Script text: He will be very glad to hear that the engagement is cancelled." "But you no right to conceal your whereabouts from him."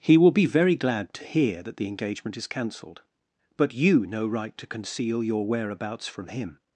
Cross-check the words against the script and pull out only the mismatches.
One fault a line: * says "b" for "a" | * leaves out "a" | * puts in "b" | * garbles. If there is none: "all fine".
all fine